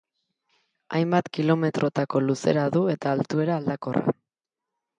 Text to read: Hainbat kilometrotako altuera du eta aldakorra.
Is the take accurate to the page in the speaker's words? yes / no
no